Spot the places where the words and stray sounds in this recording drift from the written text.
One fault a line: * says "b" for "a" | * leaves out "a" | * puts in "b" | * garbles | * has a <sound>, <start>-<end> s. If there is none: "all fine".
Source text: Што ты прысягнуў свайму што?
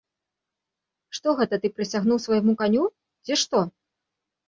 * puts in "гэта"
* puts in "каню ці"